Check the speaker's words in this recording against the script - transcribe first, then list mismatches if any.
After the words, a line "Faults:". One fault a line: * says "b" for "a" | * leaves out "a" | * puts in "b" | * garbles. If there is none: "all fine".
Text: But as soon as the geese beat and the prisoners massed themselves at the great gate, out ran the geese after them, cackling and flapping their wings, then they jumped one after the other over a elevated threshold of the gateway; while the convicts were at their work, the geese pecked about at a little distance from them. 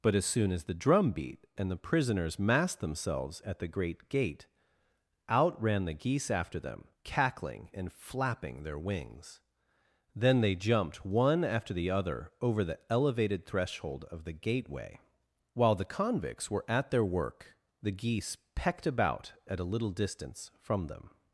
But as soon as the drum beat and the prisoners massed themselves at the great gate, out ran the geese after them, cackling and flapping their wings, then they jumped one after the other over the elevated threshold of the gateway; while the convicts were at their work, the geese pecked about at a little distance from them.
Faults:
* says "drum" for "geese"
* says "the" for "a"